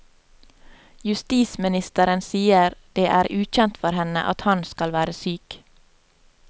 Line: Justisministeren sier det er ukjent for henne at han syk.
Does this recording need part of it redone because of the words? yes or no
yes